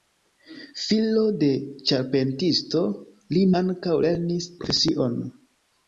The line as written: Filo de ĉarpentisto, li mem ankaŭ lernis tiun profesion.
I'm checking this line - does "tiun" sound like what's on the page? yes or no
no